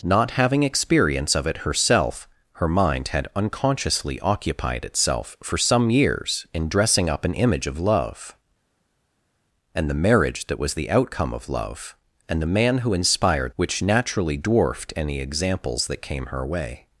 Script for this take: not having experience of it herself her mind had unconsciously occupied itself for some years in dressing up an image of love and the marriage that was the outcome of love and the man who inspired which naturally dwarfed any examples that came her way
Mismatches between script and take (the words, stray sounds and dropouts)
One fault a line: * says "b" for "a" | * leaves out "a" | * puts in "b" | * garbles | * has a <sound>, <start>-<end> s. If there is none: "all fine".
all fine